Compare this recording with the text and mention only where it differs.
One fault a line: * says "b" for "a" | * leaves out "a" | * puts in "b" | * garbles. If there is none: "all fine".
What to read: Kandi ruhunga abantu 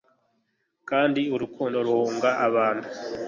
* puts in "urukundo"